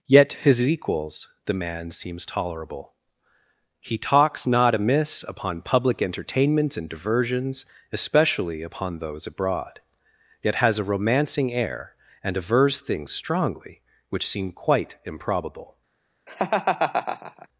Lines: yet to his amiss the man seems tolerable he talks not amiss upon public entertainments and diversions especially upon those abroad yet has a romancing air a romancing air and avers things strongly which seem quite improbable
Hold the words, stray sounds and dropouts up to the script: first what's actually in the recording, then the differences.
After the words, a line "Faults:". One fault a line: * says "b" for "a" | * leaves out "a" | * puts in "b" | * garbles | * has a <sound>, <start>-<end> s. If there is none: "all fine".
yet to his equals the man seems tolerable he talks not amiss upon public entertainments and diversions especially upon those abroad yet has a romancing air and avers things strongly which seem quite improbable
Faults:
* says "equals" for "amiss"
* leaves out "a romancing air"
* has a laugh, 16.3-17.5 s